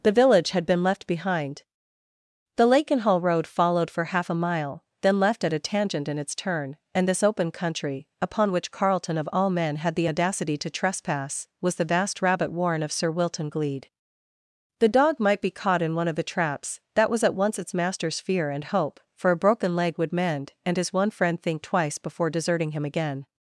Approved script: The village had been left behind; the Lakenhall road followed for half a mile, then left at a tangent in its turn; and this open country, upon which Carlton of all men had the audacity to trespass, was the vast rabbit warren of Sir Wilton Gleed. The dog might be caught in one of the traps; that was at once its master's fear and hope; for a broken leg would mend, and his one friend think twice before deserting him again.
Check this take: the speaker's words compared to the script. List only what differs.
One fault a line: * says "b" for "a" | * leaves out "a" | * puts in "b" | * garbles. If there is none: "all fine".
all fine